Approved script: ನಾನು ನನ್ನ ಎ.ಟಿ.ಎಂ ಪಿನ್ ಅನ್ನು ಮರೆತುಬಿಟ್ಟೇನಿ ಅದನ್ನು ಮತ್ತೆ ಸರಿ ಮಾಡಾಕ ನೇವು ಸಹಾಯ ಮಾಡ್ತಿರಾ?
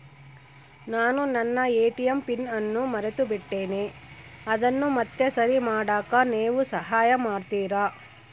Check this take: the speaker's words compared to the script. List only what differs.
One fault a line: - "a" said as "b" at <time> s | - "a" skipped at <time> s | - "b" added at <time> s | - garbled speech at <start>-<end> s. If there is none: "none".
none